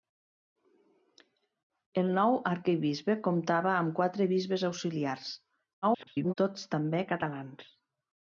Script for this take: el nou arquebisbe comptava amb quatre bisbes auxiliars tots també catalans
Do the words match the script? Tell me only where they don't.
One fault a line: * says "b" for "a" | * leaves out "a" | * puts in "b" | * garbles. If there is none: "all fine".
* garbles